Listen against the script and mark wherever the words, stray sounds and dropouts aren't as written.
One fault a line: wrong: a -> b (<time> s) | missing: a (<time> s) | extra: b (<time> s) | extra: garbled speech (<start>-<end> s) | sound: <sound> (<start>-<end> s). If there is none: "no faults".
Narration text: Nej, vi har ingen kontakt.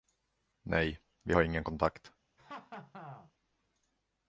sound: laugh (2.4-3.3 s)